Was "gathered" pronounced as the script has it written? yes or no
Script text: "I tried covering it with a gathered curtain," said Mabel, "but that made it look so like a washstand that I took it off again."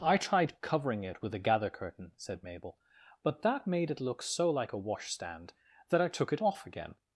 no